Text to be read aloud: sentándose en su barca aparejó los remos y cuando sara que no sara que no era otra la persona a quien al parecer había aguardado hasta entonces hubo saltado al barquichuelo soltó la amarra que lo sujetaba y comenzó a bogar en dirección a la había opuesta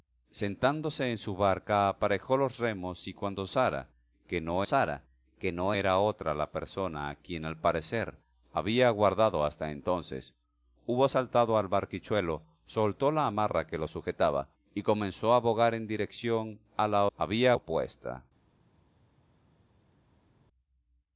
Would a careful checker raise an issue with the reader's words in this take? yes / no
no